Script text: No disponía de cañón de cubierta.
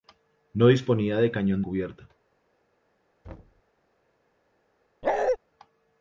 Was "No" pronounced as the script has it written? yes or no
yes